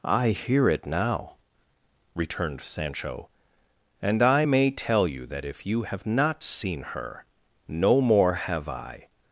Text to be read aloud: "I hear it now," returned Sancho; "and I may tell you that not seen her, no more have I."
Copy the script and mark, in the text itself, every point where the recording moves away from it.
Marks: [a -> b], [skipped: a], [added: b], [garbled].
"I hear it now," returned Sancho; "and I may tell you that [added: if you have] not seen her, no more have I."